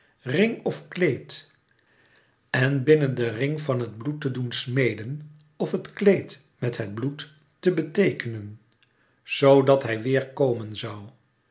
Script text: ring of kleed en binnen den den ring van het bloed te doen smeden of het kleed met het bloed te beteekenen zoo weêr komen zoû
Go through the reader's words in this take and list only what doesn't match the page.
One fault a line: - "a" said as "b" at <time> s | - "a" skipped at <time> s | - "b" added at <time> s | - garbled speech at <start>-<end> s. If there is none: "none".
- "den" skipped at 3.3 s
- "dat hij" added at 9.6 s